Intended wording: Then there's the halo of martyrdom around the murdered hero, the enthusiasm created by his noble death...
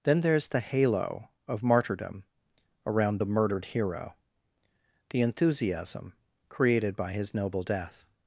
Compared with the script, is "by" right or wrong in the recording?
right